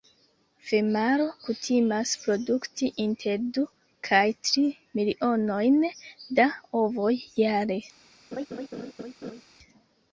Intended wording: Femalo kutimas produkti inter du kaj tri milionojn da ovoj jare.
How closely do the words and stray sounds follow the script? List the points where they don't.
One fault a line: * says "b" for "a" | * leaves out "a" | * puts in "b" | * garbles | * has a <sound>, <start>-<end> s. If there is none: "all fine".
* has a laugh, 8.3-9.4 s